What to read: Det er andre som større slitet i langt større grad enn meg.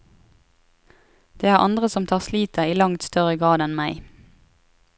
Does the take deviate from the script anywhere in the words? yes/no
yes